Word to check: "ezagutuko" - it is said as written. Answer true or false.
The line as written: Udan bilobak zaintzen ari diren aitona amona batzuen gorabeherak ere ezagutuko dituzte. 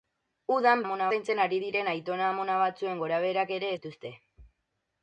false